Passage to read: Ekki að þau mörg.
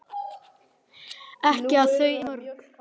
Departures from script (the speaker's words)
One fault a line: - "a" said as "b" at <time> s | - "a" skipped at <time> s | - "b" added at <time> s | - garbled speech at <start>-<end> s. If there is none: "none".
none